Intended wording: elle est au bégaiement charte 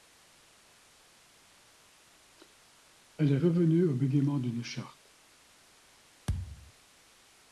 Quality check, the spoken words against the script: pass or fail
fail